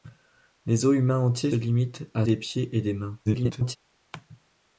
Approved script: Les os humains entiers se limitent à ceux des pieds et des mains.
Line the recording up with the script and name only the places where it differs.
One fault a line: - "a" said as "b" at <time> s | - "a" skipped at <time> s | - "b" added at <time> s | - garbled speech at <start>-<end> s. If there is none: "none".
- "se" skipped at 1.5 s
- "ceux" skipped at 2.3 s
- garbled speech at 3.3-3.8 s